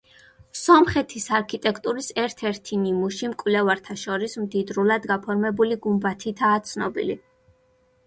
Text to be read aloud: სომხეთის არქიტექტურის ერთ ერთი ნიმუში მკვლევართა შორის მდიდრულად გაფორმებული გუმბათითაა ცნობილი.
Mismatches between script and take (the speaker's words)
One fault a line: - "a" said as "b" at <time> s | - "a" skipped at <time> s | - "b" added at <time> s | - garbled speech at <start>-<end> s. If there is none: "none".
none